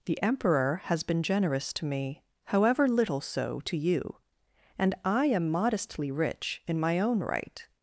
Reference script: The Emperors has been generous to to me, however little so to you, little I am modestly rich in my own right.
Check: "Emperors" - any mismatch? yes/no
yes